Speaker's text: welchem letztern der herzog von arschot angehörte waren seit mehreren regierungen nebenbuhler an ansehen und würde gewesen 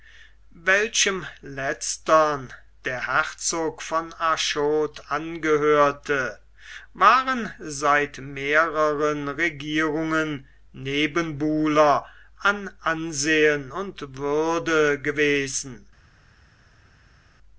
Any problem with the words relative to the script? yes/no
no